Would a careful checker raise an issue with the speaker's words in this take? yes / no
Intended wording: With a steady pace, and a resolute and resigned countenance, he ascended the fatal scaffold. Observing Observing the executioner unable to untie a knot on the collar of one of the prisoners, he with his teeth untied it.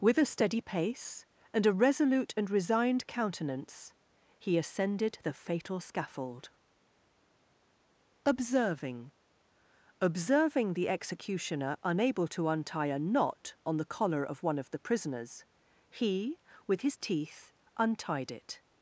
no